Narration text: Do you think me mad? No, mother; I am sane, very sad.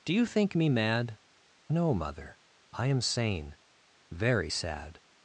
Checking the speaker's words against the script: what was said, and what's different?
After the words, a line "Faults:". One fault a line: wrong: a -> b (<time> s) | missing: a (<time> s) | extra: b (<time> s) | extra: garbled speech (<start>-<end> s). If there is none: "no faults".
Do you think me mad? No, mother; I am sane, very sad.
Faults:
no faults